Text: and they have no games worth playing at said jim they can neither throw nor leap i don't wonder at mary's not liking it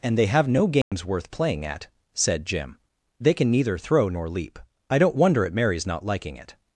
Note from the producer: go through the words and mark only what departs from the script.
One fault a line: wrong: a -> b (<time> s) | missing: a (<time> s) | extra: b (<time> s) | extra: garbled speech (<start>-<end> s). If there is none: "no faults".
no faults